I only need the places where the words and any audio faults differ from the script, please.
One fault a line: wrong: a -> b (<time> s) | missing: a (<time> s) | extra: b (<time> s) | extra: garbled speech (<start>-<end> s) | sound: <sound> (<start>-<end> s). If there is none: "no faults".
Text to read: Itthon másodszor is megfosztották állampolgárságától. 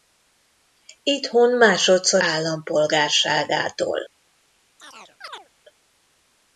missing: is megfosztották (2.2 s)
sound: chirp (4.8-5.5 s)